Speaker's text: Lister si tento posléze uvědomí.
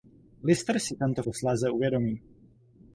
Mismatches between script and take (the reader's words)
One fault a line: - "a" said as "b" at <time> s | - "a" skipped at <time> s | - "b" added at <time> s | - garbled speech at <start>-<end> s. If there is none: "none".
none